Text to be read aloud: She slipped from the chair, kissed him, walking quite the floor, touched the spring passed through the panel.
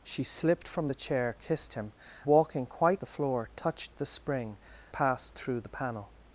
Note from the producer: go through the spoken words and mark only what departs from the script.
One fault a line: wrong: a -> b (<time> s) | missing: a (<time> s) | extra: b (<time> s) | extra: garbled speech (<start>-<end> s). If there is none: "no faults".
no faults